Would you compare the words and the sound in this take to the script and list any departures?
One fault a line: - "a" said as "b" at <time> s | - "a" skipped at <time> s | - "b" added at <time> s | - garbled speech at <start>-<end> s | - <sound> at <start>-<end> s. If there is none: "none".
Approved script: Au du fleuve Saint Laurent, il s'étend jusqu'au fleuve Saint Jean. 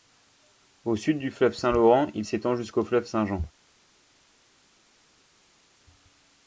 - "sud" added at 0.9 s